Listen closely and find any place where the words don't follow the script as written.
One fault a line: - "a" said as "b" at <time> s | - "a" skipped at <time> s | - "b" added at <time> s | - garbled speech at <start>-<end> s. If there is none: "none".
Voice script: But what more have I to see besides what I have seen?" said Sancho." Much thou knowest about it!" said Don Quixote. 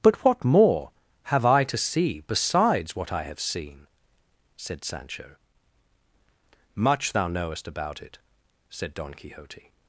none